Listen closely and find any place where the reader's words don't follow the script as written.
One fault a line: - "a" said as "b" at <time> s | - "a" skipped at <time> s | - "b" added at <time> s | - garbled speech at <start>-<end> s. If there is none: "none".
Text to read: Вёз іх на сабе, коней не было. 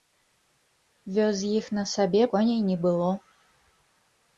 none